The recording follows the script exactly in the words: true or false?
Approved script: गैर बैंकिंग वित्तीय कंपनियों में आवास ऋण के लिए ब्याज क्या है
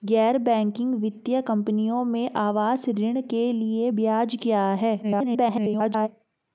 false